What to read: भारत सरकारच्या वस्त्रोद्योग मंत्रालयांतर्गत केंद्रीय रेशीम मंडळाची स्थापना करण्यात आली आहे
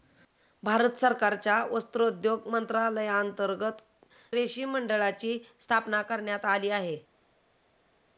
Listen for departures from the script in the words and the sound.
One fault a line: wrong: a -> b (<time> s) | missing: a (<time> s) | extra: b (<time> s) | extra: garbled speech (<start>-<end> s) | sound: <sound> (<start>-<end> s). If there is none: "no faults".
missing: केंद्रीय (3.8 s)